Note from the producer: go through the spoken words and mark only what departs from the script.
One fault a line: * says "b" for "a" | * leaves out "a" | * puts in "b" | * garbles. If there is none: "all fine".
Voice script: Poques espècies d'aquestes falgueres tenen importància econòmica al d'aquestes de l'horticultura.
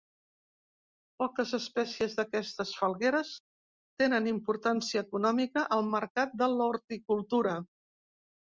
* says "mercat" for "d'aquestes"